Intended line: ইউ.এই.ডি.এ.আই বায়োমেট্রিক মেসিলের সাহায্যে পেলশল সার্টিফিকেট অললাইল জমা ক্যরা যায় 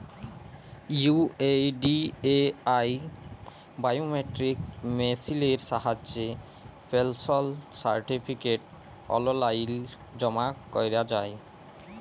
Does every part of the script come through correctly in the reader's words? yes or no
yes